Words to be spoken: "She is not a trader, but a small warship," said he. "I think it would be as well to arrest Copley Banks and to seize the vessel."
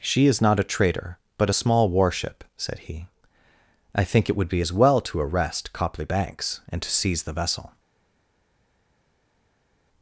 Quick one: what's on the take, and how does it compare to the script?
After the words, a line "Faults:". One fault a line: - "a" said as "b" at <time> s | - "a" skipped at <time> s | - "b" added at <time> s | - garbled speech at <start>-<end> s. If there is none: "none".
"She is not a trader, but a small warship," said he. "I think it would be as well to arrest Copley Banks and to seize the vessel."
Faults:
none